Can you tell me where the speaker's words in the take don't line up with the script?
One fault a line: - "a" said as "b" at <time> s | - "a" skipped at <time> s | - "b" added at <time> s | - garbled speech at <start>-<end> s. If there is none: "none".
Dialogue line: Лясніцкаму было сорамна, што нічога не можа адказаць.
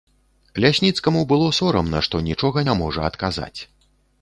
none